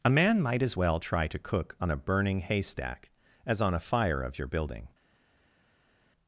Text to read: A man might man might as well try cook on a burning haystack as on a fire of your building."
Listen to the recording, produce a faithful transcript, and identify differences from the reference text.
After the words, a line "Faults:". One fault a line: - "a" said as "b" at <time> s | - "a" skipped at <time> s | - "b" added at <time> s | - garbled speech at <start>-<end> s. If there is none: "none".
A man might as well try to cook on a burning haystack as on a fire of your building."
Faults:
- "man might" skipped at 0.6 s
- "to" added at 1.2 s